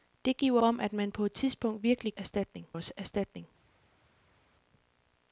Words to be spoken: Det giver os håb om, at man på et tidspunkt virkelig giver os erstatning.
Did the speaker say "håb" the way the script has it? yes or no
no